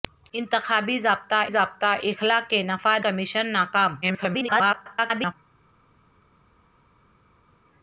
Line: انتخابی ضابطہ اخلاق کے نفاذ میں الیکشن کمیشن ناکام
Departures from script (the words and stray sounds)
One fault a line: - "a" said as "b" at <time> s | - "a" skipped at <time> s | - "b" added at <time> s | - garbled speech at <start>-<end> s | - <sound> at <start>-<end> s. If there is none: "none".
- "ضابطہ" added at 1.5 s
- "میں الیکشن" skipped at 3.1 s
- garbled speech at 4.0-5.3 s